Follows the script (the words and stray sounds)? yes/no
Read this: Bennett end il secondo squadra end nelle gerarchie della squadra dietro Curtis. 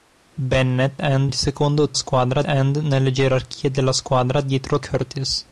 yes